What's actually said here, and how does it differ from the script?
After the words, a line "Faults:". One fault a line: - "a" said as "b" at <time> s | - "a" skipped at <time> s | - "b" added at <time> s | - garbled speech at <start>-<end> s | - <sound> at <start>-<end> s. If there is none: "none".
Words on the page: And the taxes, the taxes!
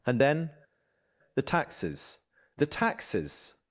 And then, the taxes, the taxes!
Faults:
- "then" added at 0.2 s